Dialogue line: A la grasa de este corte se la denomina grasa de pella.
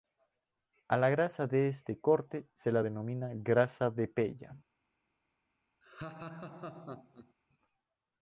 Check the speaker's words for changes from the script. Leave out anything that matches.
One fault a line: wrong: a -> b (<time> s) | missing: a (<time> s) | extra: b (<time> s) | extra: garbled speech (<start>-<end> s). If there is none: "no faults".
no faults